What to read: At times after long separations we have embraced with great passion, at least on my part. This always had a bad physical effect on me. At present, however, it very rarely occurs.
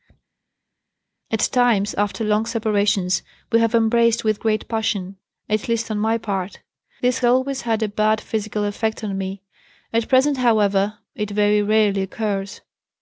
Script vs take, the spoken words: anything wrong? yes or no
no